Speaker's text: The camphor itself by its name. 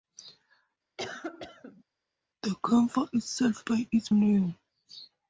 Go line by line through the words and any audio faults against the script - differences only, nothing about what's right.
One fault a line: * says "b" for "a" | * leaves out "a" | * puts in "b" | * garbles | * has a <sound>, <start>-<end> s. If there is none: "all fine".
* has a cough, 1.0-1.8 s